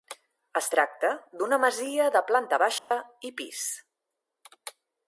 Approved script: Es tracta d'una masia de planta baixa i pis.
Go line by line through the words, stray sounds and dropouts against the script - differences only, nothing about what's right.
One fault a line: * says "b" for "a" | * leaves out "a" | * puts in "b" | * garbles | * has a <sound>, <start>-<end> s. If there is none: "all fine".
* has a dropout, 2.8-2.9 s